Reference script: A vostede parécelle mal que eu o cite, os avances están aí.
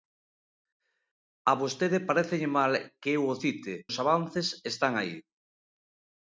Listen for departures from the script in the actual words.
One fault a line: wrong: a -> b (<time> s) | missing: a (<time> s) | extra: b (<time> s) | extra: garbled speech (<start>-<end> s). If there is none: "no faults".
no faults